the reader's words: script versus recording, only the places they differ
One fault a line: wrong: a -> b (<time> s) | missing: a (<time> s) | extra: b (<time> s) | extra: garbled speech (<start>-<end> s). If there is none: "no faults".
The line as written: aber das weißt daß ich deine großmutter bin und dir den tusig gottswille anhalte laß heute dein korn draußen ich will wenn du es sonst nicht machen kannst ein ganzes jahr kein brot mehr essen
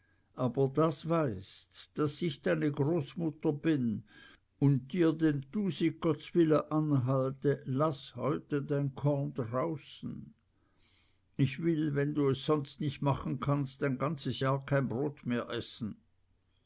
no faults